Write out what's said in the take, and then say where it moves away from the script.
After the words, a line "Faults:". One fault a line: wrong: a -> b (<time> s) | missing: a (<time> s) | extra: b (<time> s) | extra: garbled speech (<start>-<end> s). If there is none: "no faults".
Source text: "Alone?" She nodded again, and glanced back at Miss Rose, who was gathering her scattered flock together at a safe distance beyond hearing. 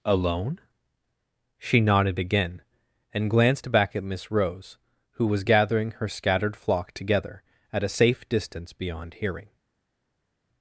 "Alone?" She nodded again, and glanced back at Miss Rose, who was gathering her scattered flock together at a safe distance beyond hearing.
Faults:
no faults